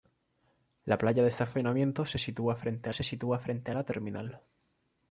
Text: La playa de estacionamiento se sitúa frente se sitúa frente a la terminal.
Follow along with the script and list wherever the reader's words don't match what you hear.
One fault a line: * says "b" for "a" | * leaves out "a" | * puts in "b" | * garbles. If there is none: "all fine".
all fine